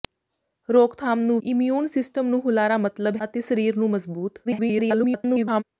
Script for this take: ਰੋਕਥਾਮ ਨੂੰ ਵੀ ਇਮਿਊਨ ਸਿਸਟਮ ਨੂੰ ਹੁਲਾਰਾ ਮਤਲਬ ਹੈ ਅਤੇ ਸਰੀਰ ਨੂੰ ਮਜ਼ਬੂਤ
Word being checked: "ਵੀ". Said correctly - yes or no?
no